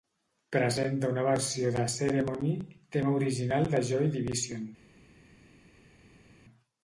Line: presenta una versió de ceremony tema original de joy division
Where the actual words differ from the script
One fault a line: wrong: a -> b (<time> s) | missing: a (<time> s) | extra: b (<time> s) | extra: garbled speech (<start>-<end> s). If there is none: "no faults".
no faults